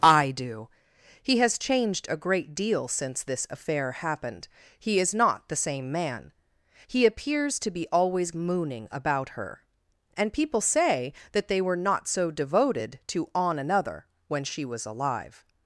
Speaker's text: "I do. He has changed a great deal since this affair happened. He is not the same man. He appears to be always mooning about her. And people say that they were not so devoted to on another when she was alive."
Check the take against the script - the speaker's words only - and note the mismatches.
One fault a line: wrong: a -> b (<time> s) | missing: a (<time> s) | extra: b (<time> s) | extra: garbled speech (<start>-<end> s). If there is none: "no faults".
no faults